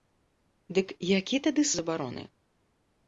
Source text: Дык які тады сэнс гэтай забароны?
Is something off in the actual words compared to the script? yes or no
yes